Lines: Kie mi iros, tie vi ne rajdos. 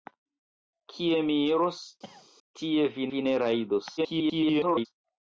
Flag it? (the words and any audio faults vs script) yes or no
yes